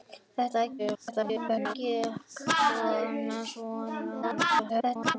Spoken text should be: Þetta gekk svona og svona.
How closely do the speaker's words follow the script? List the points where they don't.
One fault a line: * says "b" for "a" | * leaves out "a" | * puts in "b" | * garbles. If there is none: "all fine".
* garbles
* garbles